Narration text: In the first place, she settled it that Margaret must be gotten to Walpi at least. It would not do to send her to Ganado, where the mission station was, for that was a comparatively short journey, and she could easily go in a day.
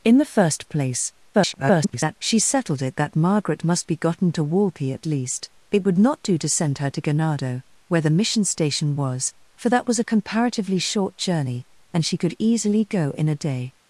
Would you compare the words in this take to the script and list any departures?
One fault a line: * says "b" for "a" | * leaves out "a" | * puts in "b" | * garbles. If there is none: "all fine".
* garbles